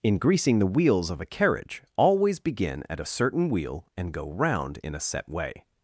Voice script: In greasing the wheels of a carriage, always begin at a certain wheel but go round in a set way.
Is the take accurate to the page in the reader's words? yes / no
no